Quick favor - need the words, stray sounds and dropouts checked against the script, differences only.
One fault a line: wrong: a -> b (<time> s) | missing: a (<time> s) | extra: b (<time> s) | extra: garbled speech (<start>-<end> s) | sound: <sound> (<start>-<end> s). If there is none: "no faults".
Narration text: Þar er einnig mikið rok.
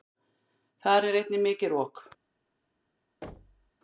sound: thud (3.2-3.7 s)